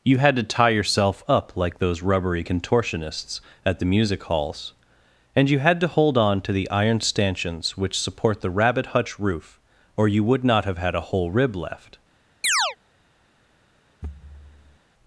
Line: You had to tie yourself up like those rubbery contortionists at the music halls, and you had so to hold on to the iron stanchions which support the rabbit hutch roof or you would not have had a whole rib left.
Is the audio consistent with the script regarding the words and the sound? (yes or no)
no